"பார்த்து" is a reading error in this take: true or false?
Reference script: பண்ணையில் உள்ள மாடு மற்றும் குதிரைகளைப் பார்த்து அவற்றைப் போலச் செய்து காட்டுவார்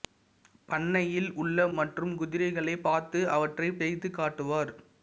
false